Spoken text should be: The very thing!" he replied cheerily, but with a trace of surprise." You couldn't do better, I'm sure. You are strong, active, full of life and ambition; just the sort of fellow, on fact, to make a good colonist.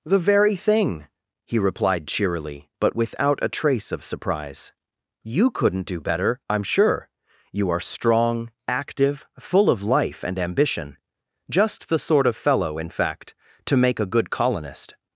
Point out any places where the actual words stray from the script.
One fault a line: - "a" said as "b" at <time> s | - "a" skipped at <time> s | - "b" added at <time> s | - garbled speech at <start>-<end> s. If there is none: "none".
- "with" said as "without" at 3.0 s
- "on" said as "in" at 12.8 s